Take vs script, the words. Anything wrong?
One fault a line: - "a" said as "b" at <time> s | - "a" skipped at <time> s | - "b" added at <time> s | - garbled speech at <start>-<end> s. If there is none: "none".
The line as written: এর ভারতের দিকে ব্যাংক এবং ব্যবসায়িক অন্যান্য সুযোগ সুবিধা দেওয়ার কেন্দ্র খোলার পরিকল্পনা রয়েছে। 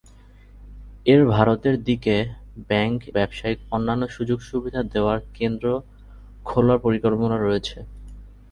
- "এবং" skipped at 3.0 s